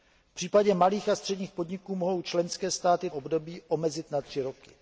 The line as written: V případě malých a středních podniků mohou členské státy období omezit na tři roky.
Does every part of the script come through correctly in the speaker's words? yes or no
yes